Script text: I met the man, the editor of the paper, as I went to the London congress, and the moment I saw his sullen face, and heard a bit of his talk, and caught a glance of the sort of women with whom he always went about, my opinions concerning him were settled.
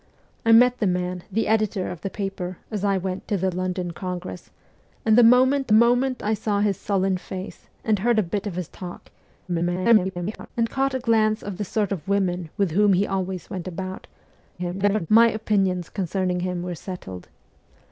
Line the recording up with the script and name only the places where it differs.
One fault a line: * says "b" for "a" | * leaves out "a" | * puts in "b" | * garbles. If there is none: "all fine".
* puts in "moment"
* garbles
* garbles